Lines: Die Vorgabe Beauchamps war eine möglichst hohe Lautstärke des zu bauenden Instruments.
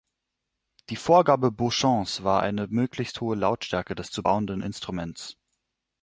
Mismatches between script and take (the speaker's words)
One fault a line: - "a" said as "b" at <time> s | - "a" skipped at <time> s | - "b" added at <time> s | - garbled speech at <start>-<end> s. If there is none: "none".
none